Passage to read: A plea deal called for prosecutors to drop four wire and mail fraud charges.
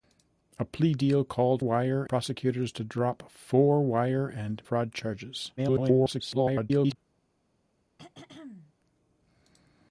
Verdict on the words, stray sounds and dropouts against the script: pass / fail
fail